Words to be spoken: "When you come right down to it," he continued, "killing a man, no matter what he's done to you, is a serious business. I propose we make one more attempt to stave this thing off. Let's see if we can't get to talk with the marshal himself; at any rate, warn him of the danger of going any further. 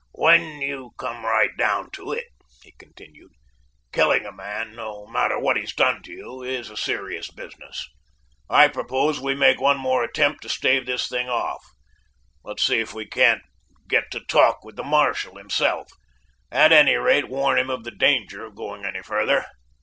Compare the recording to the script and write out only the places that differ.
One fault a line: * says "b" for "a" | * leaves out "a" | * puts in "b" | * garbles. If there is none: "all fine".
all fine